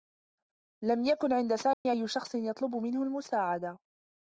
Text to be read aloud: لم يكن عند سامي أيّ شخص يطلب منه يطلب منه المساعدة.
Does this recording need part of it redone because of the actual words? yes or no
yes